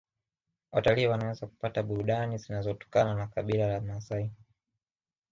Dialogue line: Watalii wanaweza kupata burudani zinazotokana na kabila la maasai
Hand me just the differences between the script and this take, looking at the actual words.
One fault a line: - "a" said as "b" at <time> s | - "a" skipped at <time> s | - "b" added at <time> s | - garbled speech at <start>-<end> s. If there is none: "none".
none